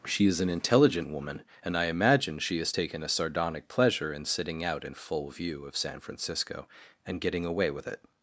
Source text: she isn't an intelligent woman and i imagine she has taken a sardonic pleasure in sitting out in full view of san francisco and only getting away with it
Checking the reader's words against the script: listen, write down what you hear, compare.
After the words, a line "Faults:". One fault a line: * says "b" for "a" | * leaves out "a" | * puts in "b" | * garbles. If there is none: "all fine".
she is an intelligent woman and i imagine she has taken a sardonic pleasure in sitting out in full view of san francisco and getting away with it
Faults:
* says "is" for "isn't"
* leaves out "only"